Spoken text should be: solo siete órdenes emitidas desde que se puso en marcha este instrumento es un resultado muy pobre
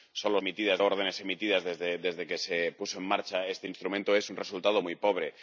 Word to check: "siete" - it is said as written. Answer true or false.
false